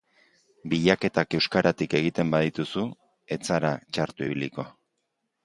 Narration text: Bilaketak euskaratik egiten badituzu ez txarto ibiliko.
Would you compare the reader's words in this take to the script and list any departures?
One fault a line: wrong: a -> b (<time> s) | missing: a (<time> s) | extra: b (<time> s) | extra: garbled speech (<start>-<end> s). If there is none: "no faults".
extra: zara (3.5 s)